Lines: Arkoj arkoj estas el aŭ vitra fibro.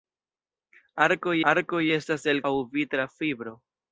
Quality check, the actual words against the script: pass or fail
pass